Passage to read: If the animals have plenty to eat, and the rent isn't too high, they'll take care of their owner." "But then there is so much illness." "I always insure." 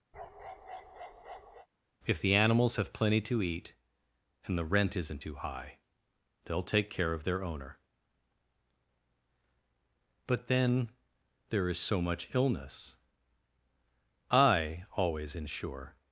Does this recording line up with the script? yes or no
yes